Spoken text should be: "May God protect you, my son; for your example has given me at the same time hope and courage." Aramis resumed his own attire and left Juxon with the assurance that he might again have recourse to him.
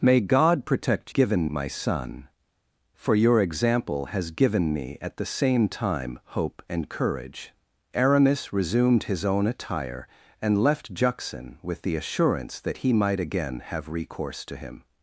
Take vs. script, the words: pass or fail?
fail